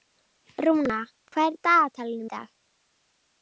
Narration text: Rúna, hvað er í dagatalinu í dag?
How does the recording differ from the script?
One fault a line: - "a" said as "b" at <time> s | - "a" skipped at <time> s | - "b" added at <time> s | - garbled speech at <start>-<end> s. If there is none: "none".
none